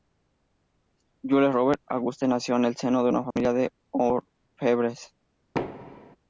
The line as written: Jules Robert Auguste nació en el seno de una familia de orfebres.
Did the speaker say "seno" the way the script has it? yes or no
yes